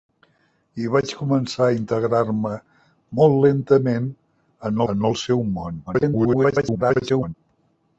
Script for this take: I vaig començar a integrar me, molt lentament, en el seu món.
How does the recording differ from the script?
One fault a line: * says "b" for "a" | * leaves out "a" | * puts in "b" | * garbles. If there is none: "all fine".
* puts in "en"
* garbles